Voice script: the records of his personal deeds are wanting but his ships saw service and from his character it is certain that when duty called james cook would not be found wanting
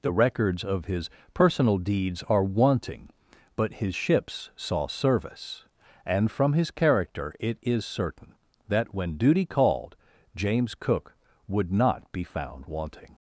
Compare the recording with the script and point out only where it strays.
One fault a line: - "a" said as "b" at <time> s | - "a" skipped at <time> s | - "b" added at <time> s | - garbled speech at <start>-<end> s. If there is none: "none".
none